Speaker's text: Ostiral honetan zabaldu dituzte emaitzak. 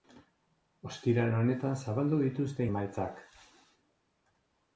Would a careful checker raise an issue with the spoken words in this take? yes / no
no